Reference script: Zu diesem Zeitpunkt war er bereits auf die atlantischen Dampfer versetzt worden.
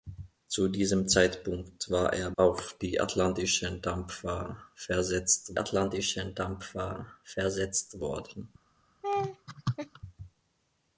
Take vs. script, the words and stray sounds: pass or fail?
fail